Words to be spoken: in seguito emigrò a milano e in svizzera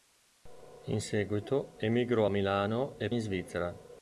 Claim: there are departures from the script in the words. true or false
false